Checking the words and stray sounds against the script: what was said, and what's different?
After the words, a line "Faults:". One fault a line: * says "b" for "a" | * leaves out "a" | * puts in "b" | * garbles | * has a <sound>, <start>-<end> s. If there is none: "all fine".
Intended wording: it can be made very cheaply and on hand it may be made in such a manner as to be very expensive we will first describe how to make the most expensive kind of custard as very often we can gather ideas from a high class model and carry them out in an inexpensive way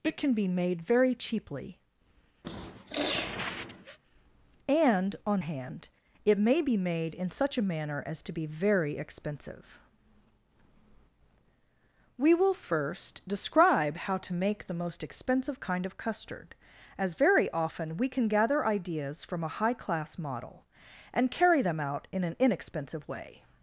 it can be made very cheaply and on hand it may be made in such a manner as to be very expensive we will first describe how to make the most expensive kind of custard as very often we can gather ideas from a high class model and carry them out in an inexpensive way
Faults:
* has a sniff, 2.4-4.0 s